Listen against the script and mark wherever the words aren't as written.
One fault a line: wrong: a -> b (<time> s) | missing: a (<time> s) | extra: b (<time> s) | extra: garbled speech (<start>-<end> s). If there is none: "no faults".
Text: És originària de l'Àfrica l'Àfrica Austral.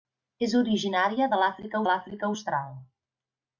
no faults